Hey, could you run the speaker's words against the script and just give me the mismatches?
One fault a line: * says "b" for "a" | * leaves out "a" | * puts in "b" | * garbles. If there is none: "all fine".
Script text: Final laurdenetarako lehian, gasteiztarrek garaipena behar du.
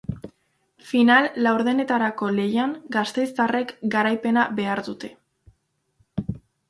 * says "dute" for "du"